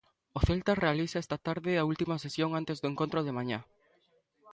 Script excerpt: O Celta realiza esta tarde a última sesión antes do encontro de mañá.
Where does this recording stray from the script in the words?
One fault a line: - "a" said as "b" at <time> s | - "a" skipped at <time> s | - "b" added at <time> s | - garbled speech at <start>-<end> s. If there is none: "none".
none